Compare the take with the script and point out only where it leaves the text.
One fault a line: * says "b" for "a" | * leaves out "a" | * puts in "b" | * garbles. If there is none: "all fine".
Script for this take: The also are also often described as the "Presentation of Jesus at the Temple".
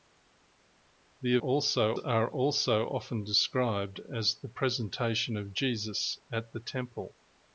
all fine